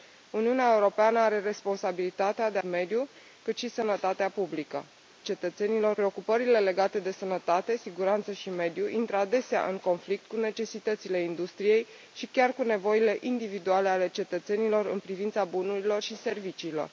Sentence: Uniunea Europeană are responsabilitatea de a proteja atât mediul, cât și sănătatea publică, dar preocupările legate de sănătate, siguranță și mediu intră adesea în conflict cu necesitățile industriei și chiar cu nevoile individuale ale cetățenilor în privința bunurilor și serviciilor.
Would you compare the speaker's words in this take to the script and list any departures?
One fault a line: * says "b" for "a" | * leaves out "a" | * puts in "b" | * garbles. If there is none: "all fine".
* leaves out "a proteja atât"
* says "cetățenilor" for "dar"